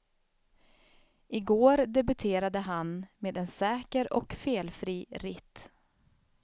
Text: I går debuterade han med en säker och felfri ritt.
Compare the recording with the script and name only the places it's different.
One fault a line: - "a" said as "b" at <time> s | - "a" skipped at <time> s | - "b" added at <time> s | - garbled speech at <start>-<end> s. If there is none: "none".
none